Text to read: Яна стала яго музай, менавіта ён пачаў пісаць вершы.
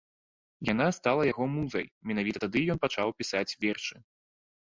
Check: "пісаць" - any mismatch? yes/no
no